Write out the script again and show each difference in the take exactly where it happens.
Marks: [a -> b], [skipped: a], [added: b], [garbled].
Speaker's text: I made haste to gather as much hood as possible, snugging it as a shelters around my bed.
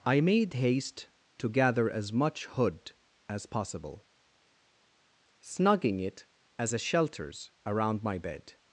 I made haste to gather as much hood as possible, snugging it as a shelters around my bed.